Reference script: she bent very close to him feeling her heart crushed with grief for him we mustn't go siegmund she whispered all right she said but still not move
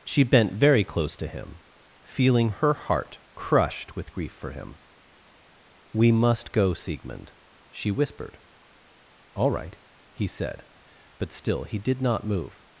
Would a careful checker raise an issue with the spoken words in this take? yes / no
yes